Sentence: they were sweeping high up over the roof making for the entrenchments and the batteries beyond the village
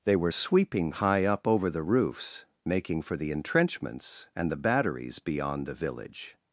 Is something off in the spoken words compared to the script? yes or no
yes